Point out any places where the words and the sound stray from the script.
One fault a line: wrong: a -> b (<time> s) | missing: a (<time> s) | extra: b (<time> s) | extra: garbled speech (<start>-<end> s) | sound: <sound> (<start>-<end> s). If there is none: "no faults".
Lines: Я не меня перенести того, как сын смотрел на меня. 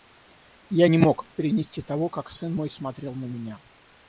wrong: меня -> мог (1.0 s)
extra: мой (2.5 s)